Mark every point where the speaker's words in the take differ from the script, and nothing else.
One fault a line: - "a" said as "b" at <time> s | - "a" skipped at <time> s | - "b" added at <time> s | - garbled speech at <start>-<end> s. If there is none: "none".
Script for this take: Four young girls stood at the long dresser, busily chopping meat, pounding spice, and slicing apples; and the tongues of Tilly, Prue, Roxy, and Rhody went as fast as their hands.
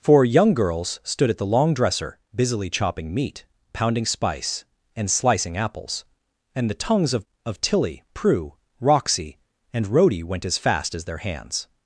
- "of" added at 7.5 s